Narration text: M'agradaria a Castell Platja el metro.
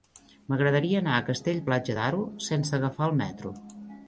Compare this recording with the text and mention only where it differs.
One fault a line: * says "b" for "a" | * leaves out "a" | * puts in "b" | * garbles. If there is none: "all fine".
* puts in "anar"
* puts in "d'Aro sense agafar"